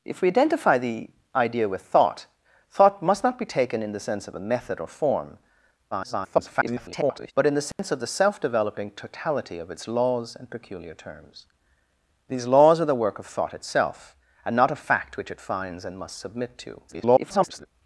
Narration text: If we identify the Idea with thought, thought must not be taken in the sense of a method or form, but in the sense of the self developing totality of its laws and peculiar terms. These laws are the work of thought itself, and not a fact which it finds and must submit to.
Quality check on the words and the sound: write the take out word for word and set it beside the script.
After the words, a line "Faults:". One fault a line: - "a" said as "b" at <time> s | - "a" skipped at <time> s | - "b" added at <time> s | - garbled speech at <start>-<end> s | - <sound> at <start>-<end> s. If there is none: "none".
If we identify the Idea with thought, thought must not be taken in the sense of a method or form, [garbled] but in the sense of the self developing totality of its laws and peculiar terms. These laws are the work of thought itself, and not a fact which it finds and must submit to. [garbled]
Faults:
- garbled speech at 5.9-7.3 s
- dropout at 7.7-7.8 s
- garbled speech at 16.9-17.7 s